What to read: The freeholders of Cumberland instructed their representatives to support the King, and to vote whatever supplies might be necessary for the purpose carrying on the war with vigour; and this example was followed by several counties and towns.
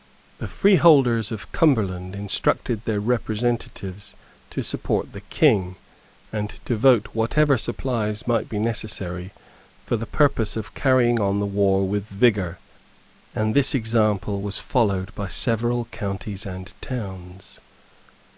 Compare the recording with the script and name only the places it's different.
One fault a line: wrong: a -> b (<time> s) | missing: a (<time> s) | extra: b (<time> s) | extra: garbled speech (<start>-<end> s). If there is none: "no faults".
extra: of (10.6 s)